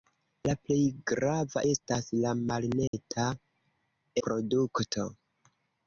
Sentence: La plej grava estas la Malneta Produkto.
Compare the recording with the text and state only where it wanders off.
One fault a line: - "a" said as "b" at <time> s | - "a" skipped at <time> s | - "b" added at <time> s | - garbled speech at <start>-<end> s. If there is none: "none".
none